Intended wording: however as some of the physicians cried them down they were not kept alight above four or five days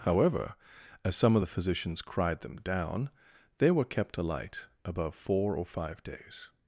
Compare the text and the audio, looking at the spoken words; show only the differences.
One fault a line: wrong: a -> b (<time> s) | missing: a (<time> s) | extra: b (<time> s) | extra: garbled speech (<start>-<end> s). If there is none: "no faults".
missing: not (3.8 s)